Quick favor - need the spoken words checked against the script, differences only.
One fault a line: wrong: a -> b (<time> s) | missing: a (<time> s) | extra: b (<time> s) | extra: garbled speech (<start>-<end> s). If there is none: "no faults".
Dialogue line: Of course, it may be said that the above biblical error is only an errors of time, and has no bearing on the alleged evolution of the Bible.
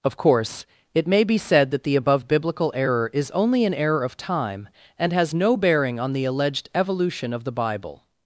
wrong: errors -> error (3.7 s)